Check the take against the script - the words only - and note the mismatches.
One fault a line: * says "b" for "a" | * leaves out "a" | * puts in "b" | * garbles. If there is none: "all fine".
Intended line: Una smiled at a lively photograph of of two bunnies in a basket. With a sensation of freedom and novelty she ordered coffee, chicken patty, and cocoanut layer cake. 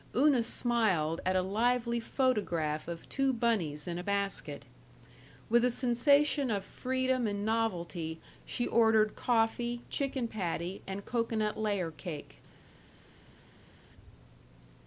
* leaves out "of"